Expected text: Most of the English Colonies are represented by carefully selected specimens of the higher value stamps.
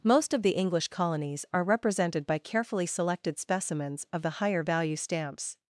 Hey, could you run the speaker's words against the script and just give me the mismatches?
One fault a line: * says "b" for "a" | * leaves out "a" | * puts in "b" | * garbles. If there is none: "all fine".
all fine